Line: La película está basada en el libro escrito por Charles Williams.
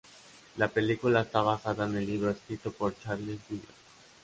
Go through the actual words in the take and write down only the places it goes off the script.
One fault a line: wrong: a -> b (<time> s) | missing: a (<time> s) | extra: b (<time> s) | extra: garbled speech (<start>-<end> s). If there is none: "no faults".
no faults